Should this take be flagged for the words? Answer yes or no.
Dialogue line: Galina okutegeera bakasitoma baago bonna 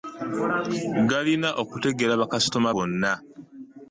yes